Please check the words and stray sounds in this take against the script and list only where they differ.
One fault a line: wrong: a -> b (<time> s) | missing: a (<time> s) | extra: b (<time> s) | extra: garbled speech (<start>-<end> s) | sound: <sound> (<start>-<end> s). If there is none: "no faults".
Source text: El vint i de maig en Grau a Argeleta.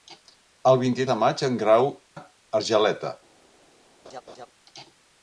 sound: laugh (4.0-4.5 s)